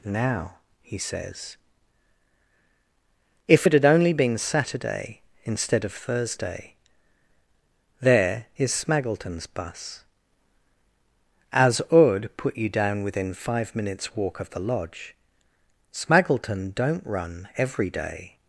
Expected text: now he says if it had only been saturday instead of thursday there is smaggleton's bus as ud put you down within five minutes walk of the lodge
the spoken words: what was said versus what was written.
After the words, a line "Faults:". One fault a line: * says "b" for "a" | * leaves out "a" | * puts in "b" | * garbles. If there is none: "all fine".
now he says if it had only been saturday instead of thursday there is smaggleton's bus as ud put you down within five minutes walk of the lodge smaggleton don't run every day
Faults:
* puts in "smaggleton don't run every day"